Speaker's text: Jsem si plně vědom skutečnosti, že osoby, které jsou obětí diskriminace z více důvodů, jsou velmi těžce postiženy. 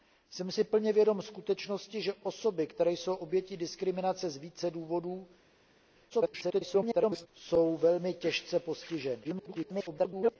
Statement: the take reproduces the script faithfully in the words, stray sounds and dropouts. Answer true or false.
false